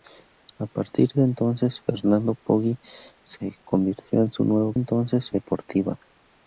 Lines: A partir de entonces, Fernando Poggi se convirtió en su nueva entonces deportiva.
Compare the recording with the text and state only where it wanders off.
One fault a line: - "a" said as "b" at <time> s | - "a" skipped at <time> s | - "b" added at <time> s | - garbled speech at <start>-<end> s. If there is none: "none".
none